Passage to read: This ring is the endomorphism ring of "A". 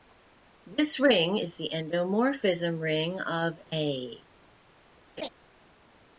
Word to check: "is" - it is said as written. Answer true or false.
true